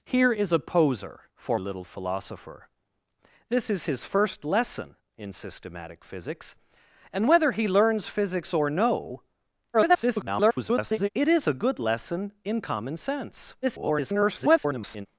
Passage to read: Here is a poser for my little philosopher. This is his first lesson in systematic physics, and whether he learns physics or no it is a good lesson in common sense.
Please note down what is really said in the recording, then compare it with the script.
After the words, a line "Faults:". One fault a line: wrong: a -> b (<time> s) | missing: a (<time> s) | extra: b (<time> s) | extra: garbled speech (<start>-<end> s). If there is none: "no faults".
Here is a poser for little philosopher. This is his first lesson in systematic physics, and whether he learns physics or no [garbled] it is a good lesson in common sense. [garbled]
Faults:
missing: my (1.6 s)
extra: garbled speech (9.7-11.1 s)
extra: garbled speech (13.6-15.1 s)